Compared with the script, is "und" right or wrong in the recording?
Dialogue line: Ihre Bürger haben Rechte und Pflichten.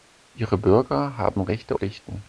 wrong